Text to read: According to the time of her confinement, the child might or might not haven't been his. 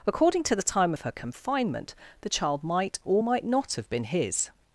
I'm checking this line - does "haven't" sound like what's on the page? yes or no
no